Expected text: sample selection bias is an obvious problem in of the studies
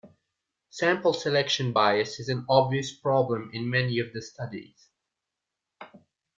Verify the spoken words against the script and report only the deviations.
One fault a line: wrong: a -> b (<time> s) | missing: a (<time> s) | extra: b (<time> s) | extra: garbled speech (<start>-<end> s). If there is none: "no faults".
extra: many (3.7 s)